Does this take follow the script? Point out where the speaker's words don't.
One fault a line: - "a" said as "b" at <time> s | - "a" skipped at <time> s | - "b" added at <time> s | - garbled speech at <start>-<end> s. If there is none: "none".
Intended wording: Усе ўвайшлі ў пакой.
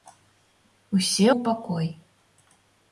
- "ўвайшлі" skipped at 1.3 s